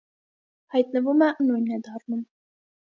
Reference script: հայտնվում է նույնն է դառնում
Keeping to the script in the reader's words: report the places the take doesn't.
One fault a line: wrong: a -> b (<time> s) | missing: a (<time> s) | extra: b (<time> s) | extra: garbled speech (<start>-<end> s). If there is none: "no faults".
no faults